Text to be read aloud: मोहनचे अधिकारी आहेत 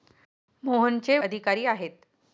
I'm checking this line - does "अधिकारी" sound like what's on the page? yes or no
yes